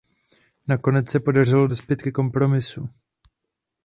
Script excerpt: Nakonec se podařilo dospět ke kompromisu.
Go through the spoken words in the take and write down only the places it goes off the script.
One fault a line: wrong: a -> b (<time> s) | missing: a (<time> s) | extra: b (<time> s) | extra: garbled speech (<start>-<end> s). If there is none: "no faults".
no faults